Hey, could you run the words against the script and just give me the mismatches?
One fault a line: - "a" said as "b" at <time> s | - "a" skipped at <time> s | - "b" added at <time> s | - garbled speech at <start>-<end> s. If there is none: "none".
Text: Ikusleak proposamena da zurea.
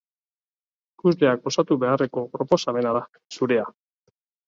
- "osatu beharreko" added at 1.5 s